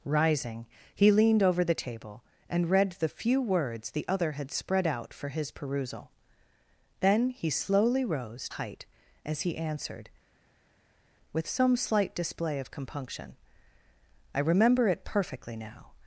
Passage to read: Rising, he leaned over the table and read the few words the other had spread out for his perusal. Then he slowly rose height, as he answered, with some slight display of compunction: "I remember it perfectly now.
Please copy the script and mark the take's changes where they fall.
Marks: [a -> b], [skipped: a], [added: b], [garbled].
Rising, he leaned over the table and read the few words the other had spread out for his perusal. Then he slowly rose height, as he answered, with some slight display of compunction: "I remember it perfectly now.